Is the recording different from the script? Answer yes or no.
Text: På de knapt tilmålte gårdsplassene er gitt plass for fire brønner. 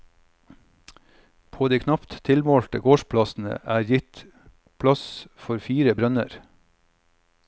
no